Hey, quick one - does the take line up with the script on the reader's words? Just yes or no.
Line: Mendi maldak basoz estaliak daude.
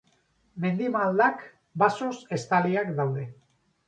yes